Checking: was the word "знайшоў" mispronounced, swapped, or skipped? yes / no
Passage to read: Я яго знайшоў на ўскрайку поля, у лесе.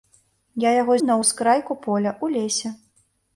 yes